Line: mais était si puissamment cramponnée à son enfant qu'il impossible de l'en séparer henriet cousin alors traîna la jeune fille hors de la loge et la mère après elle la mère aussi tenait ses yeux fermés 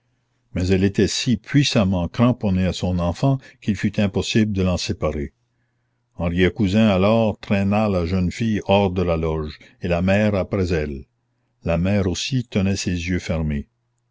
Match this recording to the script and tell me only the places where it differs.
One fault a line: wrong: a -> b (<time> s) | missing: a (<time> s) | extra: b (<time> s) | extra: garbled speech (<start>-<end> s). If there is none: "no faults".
extra: elle (0.7 s)
extra: fut (3.8 s)